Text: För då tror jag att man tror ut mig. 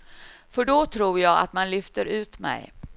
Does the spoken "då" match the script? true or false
true